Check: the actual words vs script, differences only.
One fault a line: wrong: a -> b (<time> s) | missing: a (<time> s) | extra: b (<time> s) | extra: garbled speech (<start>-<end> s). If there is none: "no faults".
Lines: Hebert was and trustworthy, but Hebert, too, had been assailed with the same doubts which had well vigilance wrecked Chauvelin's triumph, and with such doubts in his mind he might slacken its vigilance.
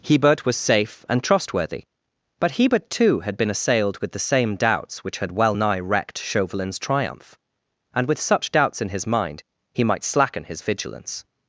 extra: safe (0.6 s)
wrong: vigilance -> nigh (5.5 s)
wrong: its -> his (10.4 s)